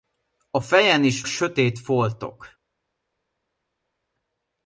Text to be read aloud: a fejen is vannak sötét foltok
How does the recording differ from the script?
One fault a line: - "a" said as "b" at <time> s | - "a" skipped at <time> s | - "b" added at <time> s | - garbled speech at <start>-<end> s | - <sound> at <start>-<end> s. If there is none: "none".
- "vannak" skipped at 1.2 s